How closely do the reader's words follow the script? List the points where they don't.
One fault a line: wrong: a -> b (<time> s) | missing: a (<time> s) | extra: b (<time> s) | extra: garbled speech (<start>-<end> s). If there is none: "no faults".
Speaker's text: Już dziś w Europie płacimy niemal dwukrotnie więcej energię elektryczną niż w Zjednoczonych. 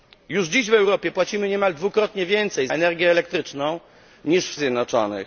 no faults